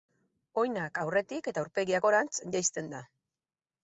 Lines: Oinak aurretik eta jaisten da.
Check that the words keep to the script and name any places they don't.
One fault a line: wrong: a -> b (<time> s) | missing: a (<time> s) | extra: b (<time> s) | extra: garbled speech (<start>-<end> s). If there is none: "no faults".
extra: aurpegia gorantz (1.6 s)